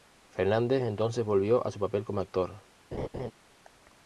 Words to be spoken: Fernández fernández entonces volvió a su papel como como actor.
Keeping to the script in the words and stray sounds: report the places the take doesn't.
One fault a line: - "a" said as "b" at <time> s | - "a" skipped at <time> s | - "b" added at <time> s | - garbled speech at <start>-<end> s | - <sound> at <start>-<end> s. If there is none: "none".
- "fernández" skipped at 0.8 s
- "como" skipped at 2.2 s
- laugh at 2.9-3.3 s